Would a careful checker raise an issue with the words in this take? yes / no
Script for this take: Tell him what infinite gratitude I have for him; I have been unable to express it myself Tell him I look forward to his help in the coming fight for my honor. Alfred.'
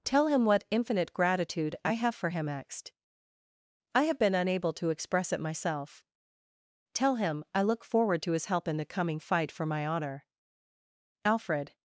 yes